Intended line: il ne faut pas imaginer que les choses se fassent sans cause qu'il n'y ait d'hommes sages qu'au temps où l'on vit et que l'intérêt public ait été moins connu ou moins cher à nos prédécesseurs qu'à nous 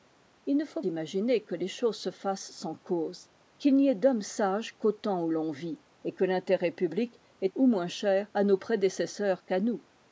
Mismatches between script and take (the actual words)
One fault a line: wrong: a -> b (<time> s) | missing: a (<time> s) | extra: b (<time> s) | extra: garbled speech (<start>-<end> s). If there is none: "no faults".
missing: pas (0.8 s)
missing: été moins connu (7.5 s)